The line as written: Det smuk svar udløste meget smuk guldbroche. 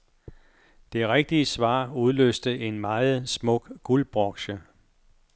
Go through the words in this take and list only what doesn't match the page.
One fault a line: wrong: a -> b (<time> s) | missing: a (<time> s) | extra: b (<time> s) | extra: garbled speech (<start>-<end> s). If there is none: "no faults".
wrong: smuk -> rigtige (1.1 s)
extra: en (2.6 s)